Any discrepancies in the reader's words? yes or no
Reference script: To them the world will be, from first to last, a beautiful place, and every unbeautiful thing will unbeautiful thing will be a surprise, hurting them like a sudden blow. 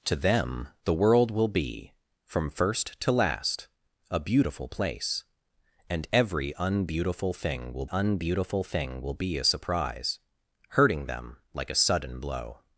no